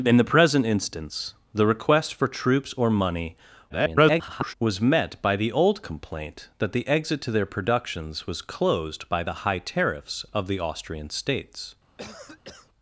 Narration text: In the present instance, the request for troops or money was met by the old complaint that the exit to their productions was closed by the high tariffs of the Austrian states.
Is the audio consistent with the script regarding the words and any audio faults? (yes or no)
no